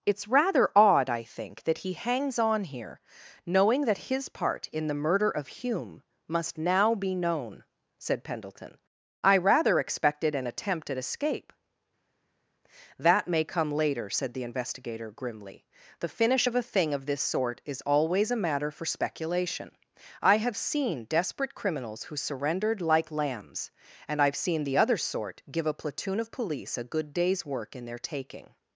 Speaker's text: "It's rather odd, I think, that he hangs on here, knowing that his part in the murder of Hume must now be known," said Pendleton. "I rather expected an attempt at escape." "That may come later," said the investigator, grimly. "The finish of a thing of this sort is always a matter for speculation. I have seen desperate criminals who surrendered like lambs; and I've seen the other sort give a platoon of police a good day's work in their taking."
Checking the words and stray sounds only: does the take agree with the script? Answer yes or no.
yes